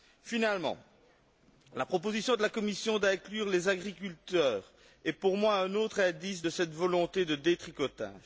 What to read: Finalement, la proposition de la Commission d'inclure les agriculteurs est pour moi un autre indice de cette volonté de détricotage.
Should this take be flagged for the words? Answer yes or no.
no